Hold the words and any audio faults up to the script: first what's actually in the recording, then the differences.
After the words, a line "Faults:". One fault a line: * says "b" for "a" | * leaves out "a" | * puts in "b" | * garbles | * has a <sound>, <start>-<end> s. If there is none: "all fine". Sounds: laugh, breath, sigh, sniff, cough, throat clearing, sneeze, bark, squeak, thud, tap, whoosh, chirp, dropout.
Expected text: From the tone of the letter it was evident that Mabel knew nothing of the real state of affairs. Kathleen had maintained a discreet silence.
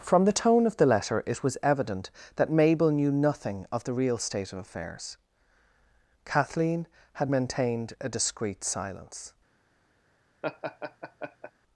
From the tone of the letter it was evident that Mabel knew nothing of the real state of affairs. Kathleen had maintained a discreet silence.
Faults:
* has a laugh, 10.4-11.5 s